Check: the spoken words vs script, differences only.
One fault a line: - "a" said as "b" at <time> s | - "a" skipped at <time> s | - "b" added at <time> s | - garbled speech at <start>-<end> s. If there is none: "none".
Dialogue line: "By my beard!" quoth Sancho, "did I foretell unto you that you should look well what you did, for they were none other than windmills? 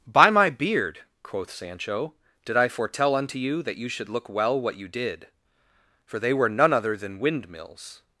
none